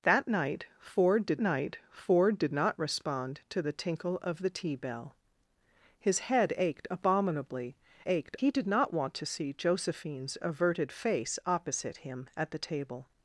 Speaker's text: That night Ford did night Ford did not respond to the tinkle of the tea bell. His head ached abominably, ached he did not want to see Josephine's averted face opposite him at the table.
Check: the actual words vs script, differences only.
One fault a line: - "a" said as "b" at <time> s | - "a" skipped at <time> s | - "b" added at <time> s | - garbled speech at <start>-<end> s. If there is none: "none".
none